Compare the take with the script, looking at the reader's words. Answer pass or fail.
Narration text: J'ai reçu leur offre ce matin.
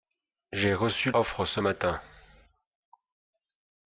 fail